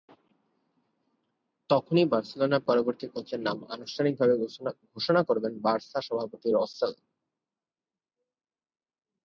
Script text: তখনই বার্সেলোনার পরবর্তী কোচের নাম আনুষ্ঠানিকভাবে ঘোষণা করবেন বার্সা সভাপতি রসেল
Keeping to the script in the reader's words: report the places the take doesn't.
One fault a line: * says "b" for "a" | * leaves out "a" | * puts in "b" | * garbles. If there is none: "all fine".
all fine